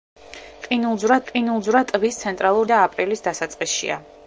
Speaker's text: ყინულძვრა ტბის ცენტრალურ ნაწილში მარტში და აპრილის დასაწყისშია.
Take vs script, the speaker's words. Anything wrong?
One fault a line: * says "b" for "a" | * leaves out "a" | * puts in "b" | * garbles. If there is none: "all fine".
* puts in "ყინულძვრა"
* leaves out "ნაწილში მარტში"